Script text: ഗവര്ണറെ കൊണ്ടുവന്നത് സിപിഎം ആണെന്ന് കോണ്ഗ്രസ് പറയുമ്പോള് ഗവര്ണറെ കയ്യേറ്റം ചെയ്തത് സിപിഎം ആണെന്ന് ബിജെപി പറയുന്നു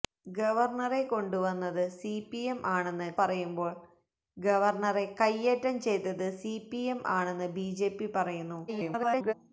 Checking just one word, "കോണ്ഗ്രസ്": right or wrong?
wrong